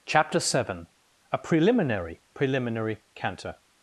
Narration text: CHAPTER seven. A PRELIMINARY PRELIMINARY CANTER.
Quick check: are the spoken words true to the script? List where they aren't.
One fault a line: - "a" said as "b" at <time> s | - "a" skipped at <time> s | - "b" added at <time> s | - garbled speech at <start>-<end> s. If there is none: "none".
none